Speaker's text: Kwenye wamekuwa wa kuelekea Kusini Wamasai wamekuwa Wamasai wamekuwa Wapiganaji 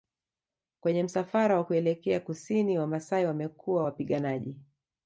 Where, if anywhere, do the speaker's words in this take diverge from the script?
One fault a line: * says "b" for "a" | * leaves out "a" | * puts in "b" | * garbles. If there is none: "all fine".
* says "msafara" for "wamekuwa"
* leaves out "Wamasai wamekuwa"